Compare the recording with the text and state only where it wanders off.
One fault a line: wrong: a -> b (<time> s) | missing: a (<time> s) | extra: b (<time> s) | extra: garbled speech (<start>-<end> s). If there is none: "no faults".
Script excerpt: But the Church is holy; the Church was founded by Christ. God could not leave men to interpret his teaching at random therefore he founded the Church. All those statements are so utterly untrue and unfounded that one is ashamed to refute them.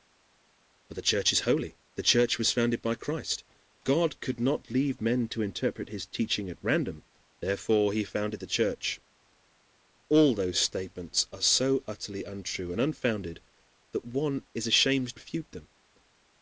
missing: to (15.2 s)